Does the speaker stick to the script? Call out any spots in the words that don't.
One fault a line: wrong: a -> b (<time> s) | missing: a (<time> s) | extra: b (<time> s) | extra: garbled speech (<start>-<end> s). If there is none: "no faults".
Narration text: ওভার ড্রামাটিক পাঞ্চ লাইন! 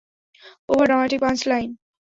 no faults